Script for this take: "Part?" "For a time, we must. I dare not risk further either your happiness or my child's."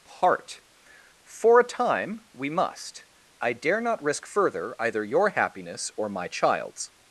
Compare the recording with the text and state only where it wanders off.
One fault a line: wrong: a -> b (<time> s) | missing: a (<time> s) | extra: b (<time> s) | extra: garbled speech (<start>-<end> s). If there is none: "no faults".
no faults